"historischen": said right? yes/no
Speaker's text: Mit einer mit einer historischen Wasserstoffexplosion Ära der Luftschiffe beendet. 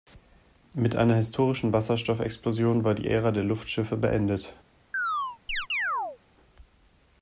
no